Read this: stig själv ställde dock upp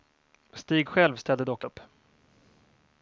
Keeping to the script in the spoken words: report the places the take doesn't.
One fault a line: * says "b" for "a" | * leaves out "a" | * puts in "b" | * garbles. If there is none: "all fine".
all fine